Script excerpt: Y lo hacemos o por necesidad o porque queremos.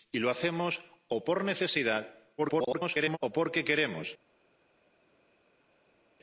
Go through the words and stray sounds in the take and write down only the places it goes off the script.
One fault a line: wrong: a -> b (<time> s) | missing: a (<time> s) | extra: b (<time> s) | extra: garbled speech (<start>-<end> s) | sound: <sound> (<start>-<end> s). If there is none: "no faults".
extra: garbled speech (2.4-3.2 s)